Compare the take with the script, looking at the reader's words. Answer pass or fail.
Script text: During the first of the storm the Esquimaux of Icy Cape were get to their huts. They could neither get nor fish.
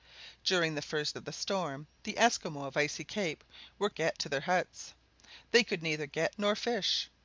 pass